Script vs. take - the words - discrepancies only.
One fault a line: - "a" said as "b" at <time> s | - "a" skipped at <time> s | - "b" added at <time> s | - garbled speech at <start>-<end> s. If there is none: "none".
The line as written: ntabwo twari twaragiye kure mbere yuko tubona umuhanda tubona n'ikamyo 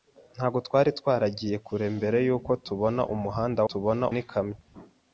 none